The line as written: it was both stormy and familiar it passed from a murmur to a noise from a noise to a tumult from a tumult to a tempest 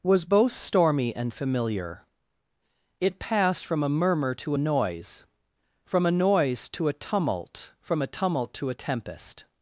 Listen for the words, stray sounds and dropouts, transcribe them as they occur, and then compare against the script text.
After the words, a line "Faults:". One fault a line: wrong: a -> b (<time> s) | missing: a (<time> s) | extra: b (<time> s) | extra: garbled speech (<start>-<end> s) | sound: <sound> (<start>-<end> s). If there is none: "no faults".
was both stormy and familiar it passed from a murmur to a noise from a noise to a tumult from a tumult to a tempest
Faults:
missing: it (0.0 s)